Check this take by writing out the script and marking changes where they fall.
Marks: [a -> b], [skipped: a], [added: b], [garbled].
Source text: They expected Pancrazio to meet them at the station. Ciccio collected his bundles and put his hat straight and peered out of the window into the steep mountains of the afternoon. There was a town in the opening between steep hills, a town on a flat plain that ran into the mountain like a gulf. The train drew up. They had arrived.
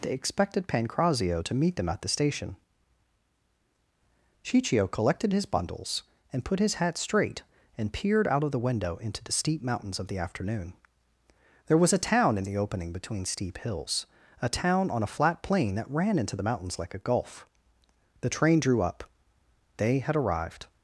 They expected Pancrazio to meet them at the station. Ciccio collected his bundles and put his hat straight and peered out of the window into the steep mountains of the afternoon. There was a town in the opening between steep hills, a town on a flat plain that ran into the [mountain -> mountains] like a gulf. The train drew up. They had arrived.